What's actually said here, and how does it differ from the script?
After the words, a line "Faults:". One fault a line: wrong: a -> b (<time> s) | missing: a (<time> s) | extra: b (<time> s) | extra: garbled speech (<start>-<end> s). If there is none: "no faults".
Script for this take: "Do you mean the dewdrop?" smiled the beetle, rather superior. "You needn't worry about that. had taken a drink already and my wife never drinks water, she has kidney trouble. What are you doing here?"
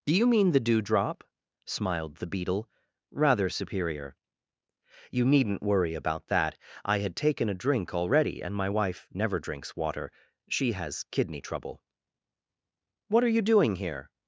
"Do you mean the dewdrop?" smiled the beetle, rather superior. "You needn't worry about that. I had taken a drink already and my wife never drinks water, she has kidney trouble. What are you doing here?"
Faults:
extra: I (6.8 s)